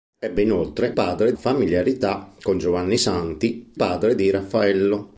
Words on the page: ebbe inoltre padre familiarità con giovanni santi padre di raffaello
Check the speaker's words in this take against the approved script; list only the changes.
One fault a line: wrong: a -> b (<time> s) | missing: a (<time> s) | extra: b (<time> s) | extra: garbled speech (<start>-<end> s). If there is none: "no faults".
no faults